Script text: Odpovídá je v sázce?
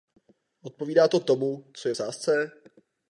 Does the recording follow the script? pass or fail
fail